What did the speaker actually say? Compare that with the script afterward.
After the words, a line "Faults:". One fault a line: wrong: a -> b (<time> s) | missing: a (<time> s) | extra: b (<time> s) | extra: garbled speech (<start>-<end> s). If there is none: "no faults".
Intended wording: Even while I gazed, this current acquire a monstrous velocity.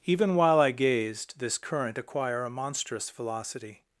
Even while I gazed, this current acquire a monstrous velocity.
Faults:
no faults